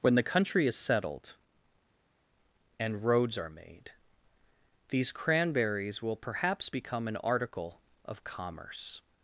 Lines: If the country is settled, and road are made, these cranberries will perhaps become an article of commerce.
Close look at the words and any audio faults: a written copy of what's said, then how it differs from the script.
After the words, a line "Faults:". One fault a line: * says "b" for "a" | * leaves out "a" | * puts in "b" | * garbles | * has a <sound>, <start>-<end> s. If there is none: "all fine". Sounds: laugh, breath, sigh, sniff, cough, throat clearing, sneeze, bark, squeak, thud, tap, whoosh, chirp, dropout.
When the country is settled, and roads are made, these cranberries will perhaps become an article of commerce.
Faults:
* says "When" for "If"
* says "roads" for "road"